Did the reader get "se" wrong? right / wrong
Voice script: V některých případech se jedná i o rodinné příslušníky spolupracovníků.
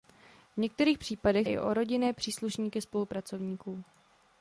wrong